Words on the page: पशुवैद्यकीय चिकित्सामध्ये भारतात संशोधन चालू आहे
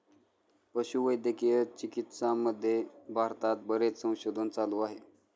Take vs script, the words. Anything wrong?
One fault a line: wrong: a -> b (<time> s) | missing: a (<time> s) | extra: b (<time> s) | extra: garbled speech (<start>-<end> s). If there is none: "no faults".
extra: बरेच (3.7 s)